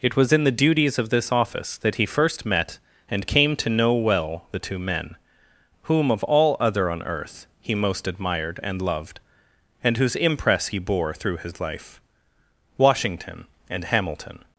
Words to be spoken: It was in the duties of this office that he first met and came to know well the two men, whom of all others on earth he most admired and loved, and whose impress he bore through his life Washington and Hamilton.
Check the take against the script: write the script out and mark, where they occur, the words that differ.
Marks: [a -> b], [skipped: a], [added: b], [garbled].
It was in the duties of this office that he first met and came to know well the two men, whom of all [others -> other] on earth he most admired and loved, and whose impress he bore through his life Washington and Hamilton.